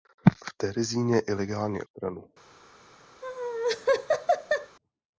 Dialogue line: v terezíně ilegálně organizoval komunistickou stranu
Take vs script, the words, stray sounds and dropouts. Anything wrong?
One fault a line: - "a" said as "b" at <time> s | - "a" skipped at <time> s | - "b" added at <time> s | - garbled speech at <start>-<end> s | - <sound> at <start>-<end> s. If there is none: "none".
- "organizoval komunistickou" skipped at 1.8 s
- laugh at 3.2-4.8 s